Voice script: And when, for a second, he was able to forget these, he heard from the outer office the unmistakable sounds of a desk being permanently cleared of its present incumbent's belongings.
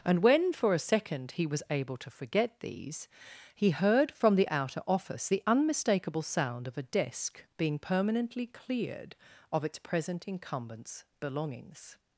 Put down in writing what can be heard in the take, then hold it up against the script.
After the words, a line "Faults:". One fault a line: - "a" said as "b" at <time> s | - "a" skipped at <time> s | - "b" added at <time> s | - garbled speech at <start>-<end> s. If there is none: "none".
And when, for a second, he was able to forget these, he heard from the outer office the unmistakable sound of a desk being permanently cleared of its present incumbent's belongings.
Faults:
- "sounds" said as "sound" at 6.2 s